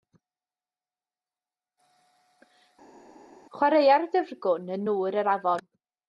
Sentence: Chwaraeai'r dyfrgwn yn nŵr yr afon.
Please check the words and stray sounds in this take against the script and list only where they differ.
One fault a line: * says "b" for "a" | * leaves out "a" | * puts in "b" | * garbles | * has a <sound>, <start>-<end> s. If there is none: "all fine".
all fine